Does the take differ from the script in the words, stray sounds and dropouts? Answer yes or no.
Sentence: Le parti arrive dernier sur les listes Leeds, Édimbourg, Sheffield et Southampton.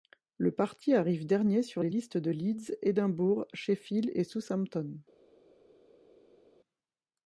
yes